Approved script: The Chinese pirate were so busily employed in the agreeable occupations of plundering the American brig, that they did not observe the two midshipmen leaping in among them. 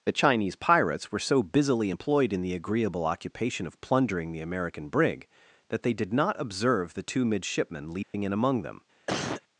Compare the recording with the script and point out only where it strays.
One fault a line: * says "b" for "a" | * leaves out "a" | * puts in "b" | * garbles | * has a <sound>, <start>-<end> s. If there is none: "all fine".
* says "pirates" for "pirate"
* says "occupation" for "occupations"
* has a dropout, 8.0-8.1 s
* has a cough, 9.1-9.4 s